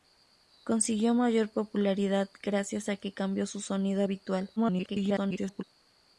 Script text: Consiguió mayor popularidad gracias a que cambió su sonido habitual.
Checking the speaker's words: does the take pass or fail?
fail